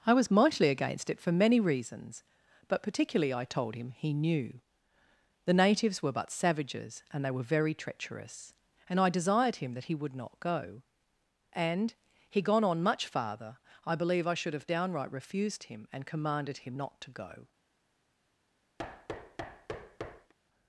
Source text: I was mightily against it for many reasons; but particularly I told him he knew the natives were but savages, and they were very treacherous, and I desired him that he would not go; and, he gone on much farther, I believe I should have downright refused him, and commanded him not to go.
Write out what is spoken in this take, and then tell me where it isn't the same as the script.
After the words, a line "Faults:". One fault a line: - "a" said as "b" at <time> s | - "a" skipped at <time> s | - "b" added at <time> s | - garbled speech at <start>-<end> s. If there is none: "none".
I was mightily against it for many reasons; but particularly I told him he knew the natives were but savages, and they were very treacherous, and I desired him that he would not go; and, he gone on much farther, I believe I should have downright refused him, and commanded him not to go.
Faults:
none